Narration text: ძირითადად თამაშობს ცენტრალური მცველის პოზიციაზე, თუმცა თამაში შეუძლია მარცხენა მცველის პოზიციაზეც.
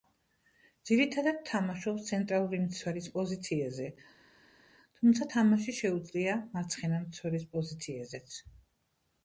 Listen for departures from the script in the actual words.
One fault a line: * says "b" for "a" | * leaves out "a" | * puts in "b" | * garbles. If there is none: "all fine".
all fine